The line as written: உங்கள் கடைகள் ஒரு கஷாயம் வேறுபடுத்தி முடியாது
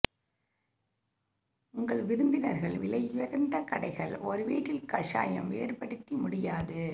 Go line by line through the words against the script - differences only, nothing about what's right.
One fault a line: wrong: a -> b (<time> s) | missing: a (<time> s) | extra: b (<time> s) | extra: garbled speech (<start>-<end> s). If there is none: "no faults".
extra: விருந்தினர்கள் விலையுயர்ந்த (2.0 s)
extra: வீட்டில் (4.4 s)